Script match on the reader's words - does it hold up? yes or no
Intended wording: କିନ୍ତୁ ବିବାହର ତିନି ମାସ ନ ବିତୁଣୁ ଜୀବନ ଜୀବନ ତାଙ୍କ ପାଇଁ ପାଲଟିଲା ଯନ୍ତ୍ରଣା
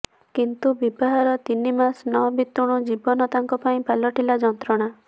no